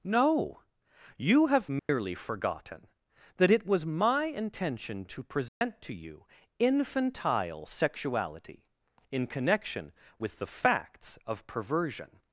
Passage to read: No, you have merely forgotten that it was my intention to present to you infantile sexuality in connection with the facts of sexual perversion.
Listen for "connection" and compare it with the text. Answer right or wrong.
right